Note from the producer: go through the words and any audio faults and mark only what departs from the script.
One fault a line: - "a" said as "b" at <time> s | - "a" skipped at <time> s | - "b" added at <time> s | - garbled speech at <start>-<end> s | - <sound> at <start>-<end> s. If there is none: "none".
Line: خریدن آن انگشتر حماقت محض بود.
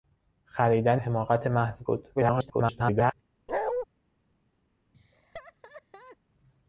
- "آن انگشتر" skipped at 1.0 s
- garbled speech at 2.2-3.1 s
- bark at 3.5-3.9 s
- laugh at 4.9-6.2 s